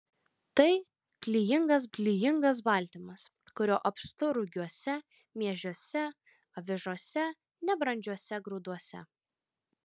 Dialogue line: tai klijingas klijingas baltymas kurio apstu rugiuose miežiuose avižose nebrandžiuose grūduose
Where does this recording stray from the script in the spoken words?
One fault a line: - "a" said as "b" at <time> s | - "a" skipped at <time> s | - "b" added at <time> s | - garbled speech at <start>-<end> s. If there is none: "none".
none